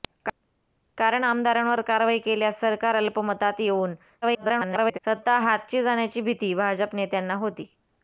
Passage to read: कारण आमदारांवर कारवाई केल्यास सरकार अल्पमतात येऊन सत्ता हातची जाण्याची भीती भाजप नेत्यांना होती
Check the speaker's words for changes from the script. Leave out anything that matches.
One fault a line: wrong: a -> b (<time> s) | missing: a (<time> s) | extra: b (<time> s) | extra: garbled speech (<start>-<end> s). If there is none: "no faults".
extra: garbled speech (4.2-5.0 s)